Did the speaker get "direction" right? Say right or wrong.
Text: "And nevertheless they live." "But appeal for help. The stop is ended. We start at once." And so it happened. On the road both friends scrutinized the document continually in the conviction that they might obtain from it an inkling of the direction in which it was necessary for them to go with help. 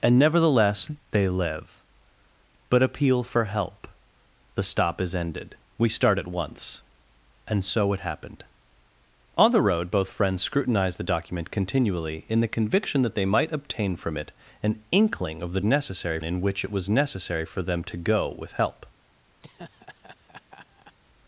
wrong